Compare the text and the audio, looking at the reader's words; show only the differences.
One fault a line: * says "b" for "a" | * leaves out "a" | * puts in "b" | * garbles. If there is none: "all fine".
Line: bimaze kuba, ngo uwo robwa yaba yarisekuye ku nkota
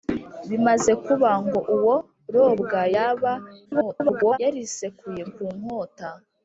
* garbles